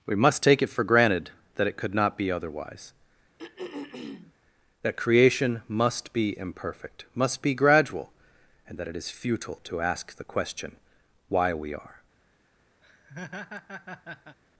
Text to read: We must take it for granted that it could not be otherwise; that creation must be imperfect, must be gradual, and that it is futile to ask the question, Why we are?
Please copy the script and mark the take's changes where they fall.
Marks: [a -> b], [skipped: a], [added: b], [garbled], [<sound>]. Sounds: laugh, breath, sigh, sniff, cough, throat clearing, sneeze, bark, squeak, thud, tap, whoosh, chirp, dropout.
We must take it for granted that it could not be otherwise; [throat clearing] that creation must be imperfect, must be gradual, and that it is futile to ask the question, Why we are? [laugh]